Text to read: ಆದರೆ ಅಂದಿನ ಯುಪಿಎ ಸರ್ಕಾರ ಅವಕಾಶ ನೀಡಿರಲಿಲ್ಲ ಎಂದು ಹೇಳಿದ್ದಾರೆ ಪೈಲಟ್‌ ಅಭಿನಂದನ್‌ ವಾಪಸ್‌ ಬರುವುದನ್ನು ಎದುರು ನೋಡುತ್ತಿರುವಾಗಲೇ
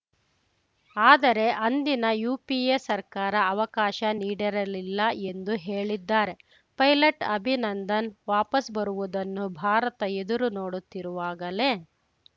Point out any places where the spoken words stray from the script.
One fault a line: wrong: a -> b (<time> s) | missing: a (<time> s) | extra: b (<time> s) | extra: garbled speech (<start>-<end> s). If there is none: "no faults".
extra: ಭಾರತ (9.6 s)